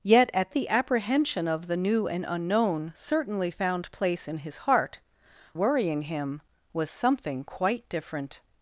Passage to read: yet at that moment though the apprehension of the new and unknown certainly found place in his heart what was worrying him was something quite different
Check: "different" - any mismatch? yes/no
no